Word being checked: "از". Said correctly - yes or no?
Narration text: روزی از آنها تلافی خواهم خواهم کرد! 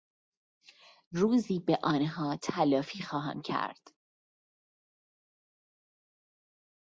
no